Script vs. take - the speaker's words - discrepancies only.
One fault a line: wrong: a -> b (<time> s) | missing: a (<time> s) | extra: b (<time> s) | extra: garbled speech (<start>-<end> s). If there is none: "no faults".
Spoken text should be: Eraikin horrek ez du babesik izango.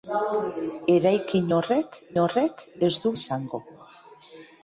extra: horrek (2.2 s)
missing: babesik (3.1 s)